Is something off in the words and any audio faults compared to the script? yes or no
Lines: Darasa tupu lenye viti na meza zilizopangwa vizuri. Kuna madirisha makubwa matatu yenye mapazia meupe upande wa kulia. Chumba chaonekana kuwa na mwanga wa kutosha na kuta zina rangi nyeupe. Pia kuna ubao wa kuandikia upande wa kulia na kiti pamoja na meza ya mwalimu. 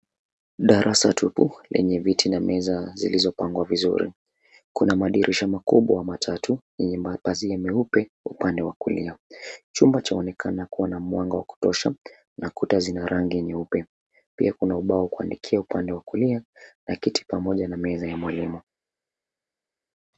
no